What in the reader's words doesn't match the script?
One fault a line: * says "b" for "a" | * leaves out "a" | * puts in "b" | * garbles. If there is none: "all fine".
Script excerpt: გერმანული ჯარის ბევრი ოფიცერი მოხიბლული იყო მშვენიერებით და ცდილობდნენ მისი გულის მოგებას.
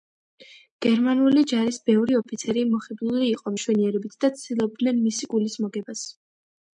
all fine